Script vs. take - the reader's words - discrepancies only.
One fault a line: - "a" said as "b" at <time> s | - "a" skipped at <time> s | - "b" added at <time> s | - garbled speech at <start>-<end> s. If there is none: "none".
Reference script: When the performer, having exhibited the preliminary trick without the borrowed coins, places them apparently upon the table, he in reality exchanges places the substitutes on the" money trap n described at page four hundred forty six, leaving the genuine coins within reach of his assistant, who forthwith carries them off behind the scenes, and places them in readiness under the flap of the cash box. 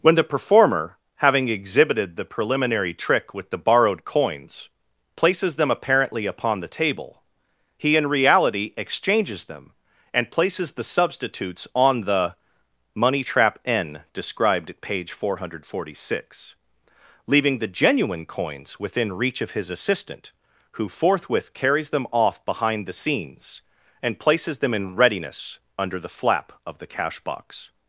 - "without" said as "with" at 3.4 s
- "them and" added at 9.4 s